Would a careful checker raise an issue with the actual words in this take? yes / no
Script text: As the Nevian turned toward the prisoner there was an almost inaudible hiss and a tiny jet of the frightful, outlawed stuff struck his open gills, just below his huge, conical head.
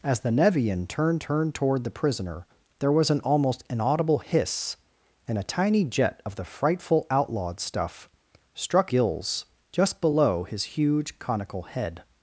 yes